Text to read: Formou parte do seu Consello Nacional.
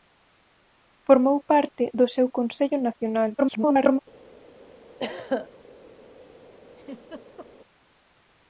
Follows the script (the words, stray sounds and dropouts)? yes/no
no